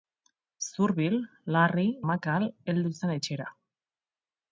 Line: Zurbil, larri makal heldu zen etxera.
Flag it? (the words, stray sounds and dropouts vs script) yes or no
no